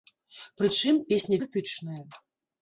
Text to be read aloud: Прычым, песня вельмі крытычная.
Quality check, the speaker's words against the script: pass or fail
fail